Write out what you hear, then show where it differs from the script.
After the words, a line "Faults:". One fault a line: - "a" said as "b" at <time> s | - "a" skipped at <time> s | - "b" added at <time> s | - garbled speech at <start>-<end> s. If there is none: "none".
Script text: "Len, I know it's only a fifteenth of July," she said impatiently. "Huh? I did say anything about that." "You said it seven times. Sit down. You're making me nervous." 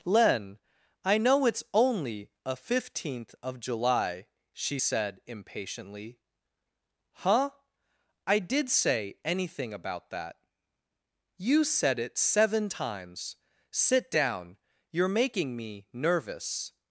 "Len, I know it's only a fifteenth of July," she said impatiently. "Huh? I did say anything about that." "You said it seven times. Sit down. You're making me nervous."
Faults:
none